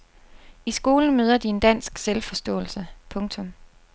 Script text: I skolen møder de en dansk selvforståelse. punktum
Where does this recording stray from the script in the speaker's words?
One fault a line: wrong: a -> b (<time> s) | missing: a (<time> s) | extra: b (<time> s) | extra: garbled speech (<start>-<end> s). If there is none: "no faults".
no faults